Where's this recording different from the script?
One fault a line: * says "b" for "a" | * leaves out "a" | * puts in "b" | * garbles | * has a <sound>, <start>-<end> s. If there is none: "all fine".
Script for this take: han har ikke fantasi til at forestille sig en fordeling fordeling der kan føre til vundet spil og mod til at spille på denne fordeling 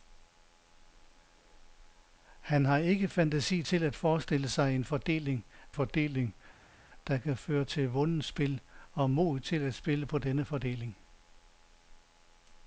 all fine